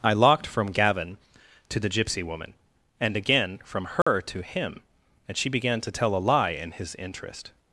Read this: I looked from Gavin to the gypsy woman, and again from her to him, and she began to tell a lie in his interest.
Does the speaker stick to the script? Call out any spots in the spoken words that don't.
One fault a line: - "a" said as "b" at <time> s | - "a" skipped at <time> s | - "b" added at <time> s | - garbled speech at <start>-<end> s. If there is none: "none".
- "looked" said as "locked" at 0.1 s